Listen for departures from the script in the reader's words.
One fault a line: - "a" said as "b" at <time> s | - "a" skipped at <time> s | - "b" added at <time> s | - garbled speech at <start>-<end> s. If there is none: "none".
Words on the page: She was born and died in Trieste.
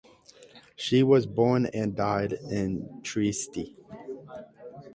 none